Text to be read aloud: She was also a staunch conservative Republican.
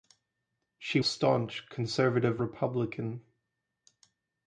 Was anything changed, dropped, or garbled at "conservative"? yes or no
no